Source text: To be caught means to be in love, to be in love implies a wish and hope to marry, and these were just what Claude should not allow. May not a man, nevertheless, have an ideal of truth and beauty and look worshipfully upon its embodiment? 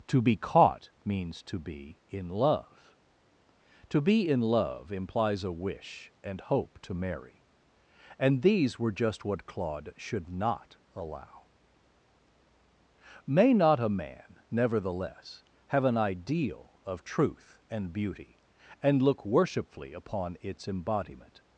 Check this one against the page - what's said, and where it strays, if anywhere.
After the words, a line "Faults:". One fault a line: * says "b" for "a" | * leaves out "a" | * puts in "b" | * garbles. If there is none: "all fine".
To be caught means to be in love, to be in love implies a wish and hope to marry, and these were just what Claude should not allow. May not a man, nevertheless, have an ideal of truth and beauty and look worshipfully upon its embodiment?
Faults:
all fine